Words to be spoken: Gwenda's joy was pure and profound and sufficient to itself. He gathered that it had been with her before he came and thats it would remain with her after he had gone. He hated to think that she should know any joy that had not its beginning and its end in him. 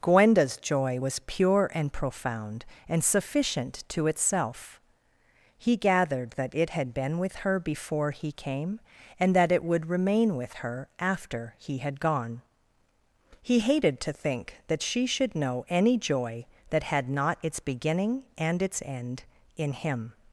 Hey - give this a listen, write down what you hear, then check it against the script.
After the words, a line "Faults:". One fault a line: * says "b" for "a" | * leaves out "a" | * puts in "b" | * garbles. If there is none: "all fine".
Gwenda's joy was pure and profound and sufficient to itself. He gathered that it had been with her before he came and that it would remain with her after he had gone. He hated to think that she should know any joy that had not its beginning and its end in him.
Faults:
* says "that" for "thats"